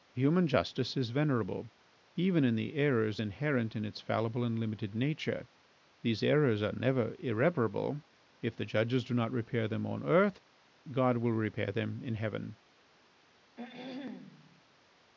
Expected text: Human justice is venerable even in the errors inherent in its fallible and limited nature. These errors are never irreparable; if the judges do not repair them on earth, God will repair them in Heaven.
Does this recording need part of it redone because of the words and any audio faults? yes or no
yes